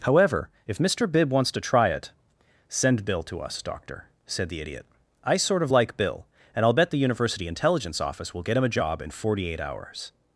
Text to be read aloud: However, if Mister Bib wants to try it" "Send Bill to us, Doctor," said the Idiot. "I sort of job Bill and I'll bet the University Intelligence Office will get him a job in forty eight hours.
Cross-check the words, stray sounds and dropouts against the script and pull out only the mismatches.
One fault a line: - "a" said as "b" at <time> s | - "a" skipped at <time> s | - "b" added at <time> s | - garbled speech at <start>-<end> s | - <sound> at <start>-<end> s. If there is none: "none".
- "job" said as "like" at 5.7 s